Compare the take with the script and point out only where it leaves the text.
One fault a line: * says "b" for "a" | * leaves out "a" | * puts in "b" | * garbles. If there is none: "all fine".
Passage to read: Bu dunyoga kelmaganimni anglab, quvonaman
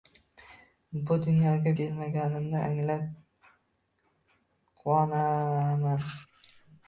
all fine